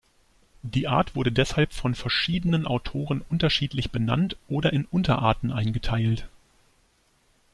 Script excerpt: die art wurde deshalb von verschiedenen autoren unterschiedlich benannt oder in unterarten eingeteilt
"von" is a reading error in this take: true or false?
false